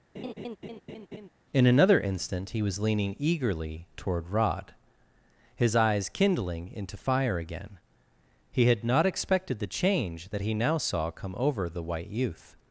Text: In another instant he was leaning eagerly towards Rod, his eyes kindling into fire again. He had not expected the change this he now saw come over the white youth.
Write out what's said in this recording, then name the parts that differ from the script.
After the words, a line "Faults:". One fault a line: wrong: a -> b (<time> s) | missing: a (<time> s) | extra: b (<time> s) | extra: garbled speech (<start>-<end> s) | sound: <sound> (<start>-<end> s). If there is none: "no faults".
In another instant he was leaning eagerly toward Rod, his eyes kindling into fire again. He had not expected the change that he now saw come over the white youth.
Faults:
sound: laugh (0.1-1.3 s)
wrong: towards -> toward (3.9 s)
wrong: this -> that (10.3 s)